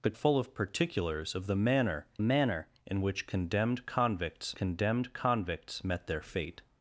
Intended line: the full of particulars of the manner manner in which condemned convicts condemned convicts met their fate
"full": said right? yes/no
yes